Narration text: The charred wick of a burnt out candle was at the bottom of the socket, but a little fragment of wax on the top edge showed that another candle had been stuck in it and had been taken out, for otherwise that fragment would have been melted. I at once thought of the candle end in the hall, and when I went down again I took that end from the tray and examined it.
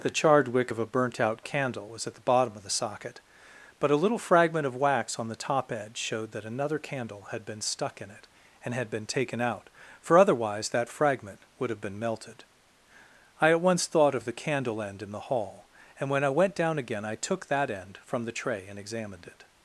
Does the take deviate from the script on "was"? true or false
false